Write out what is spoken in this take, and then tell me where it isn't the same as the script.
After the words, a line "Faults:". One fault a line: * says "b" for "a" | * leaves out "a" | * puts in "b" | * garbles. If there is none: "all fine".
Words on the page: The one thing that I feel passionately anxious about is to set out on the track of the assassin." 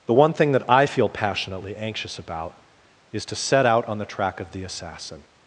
The one thing that I feel passionately anxious about is to set out on the track of the assassin."
Faults:
all fine